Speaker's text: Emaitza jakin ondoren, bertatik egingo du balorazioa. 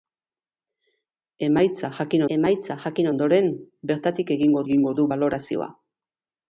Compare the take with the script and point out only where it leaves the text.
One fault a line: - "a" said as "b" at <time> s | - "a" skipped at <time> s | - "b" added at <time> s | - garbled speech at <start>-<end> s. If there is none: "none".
- "emaitza jakin" added at 2.4 s
- "egingo" added at 4.7 s